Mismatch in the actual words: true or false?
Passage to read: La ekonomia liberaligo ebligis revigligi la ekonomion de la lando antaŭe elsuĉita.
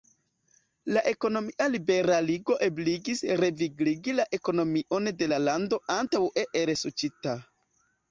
false